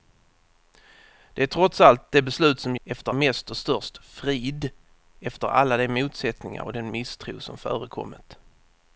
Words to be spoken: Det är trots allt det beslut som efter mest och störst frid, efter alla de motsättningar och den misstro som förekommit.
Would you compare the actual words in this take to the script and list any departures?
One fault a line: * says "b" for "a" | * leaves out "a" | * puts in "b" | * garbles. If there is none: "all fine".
all fine